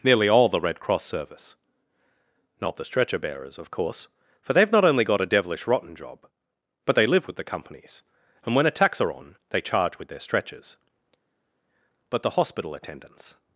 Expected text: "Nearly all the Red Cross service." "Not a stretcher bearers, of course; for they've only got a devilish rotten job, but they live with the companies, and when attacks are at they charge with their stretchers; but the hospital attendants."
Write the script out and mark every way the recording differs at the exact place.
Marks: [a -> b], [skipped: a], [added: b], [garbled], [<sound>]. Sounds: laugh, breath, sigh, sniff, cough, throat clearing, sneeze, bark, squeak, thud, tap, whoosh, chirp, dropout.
"Nearly all the Red Cross service." "Not [a -> the] stretcher bearers, of course; for they've [added: not] only got a devilish rotten job, but they live with the companies, and when attacks are [at -> on] they charge with their stretchers; but the hospital attendants."